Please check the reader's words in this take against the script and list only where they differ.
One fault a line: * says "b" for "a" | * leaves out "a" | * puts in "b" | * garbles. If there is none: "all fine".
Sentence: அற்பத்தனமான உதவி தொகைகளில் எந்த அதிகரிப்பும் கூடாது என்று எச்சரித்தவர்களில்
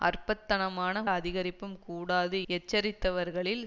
* leaves out "உதவி தொகைகளில் எந்த"
* leaves out "என்று"